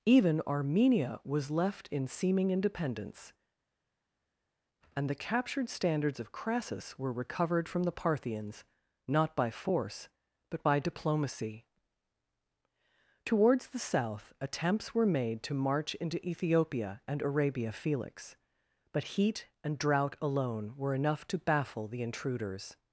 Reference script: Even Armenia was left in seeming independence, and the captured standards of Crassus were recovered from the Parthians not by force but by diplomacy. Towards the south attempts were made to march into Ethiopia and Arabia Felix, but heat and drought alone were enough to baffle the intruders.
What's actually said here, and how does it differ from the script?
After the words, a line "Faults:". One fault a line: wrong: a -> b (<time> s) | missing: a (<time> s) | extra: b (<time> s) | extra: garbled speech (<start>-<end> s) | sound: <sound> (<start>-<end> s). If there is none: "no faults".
Even Armenia was left in seeming independence, and the captured standards of Crassus were recovered from the Parthians not by force but by diplomacy. Towards the south attempts were made to march into Ethiopia and Arabia Felix, but heat and drought alone were enough to baffle the intruders.
Faults:
no faults